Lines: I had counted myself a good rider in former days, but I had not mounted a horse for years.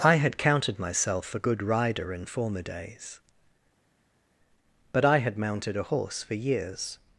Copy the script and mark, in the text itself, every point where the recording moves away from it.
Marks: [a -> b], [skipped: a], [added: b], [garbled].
I had counted myself a good rider in former days, but I had [skipped: not] mounted a horse for years.